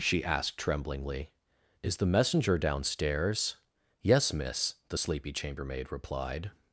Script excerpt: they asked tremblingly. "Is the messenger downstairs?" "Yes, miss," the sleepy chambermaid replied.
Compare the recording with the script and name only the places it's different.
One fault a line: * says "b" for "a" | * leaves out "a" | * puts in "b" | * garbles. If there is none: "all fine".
* says "she" for "they"